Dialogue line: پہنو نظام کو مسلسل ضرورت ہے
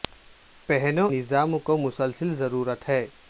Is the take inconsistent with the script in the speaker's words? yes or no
no